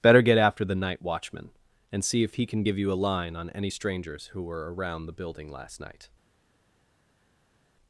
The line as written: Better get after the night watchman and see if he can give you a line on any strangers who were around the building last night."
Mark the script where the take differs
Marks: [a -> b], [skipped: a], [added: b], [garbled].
Better get after the night watchman and see if he can give you a line on any strangers who were around the building last night."